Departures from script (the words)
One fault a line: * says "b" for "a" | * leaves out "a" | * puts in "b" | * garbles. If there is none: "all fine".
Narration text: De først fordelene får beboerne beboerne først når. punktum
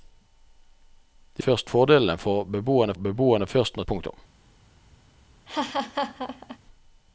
all fine